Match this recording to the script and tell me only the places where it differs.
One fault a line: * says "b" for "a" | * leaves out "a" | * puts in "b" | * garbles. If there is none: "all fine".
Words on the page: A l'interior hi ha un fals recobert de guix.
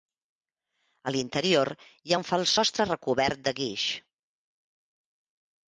* puts in "sostre"